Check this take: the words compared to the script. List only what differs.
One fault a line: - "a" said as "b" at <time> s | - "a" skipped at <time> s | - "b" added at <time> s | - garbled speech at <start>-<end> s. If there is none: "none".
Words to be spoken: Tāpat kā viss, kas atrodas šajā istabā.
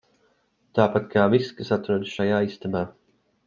none